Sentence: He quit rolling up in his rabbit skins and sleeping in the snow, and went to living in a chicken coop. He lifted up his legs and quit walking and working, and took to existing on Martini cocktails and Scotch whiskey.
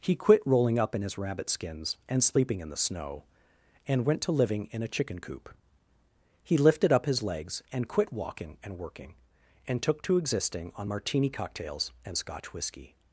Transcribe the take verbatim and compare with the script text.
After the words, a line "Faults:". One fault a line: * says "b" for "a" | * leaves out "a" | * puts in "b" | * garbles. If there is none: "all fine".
He quit rolling up in his rabbit skins and sleeping in the snow, and went to living in a chicken coop. He lifted up his legs and quit walking and working, and took to existing on Martini cocktails and Scotch whiskey.
Faults:
all fine